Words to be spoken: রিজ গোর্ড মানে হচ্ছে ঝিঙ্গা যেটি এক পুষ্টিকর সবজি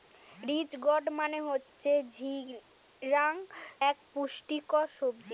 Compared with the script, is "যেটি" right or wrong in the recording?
wrong